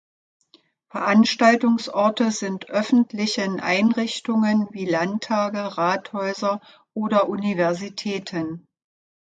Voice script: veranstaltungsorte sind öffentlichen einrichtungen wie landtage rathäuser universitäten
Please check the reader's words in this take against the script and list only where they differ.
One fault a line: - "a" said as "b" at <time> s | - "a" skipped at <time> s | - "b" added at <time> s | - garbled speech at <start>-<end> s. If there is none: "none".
- "oder" added at 7.0 s